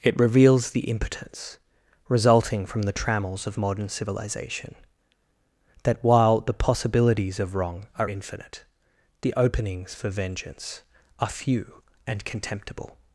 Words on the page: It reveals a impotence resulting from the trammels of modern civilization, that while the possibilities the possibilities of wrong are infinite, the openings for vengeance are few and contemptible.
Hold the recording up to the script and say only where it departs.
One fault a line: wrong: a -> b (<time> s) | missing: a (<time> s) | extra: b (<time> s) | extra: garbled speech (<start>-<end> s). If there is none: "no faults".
wrong: a -> the (0.7 s)
missing: the possibilities (7.4 s)